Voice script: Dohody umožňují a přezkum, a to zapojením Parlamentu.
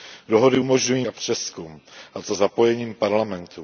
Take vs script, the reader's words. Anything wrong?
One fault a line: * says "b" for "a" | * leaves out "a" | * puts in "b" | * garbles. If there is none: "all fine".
all fine